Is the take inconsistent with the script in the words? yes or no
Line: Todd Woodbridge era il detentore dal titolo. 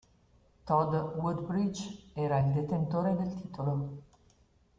yes